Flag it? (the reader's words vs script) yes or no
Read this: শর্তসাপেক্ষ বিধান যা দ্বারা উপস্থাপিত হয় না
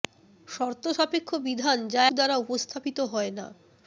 no